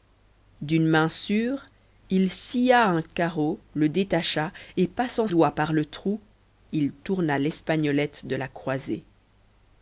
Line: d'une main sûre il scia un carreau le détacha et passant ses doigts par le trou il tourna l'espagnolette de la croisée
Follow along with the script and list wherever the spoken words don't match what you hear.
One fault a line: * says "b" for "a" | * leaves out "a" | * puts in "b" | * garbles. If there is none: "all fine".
* leaves out "ses"